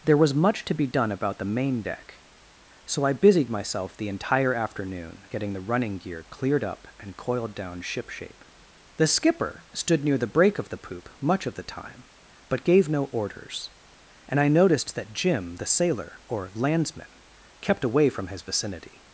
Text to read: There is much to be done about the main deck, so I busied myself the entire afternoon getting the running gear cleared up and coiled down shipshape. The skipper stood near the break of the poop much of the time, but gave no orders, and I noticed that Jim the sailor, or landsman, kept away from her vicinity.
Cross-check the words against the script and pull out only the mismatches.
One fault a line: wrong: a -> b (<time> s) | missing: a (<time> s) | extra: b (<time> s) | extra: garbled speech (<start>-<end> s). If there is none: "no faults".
wrong: is -> was (0.2 s)
wrong: her -> his (18.3 s)